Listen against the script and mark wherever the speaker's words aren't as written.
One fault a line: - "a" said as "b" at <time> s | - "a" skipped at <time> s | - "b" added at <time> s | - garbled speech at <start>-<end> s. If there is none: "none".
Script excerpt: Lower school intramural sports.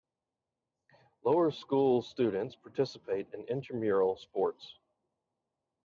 - "students participate in" added at 2.0 s